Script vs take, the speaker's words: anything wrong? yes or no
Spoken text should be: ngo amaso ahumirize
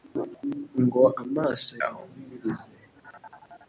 no